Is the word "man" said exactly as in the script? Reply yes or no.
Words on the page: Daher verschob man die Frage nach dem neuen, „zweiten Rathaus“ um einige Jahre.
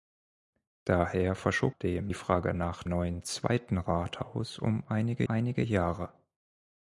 no